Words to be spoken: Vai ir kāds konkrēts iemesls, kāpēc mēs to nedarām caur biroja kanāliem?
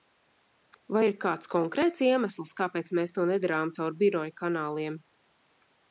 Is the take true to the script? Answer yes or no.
yes